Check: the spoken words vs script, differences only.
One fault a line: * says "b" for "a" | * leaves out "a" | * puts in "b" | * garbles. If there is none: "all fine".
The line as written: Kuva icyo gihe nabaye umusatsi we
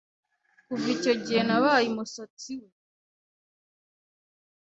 all fine